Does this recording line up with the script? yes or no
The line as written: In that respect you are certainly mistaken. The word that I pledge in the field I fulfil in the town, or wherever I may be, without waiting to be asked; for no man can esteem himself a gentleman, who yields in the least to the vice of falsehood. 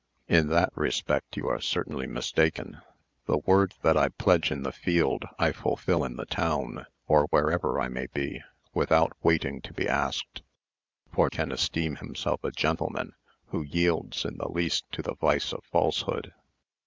no